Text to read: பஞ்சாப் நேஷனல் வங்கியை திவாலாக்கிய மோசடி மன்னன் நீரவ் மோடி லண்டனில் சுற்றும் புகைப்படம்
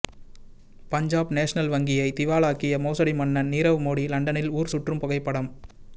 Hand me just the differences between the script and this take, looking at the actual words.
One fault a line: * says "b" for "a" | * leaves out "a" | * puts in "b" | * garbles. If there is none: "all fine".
* puts in "ஊர்"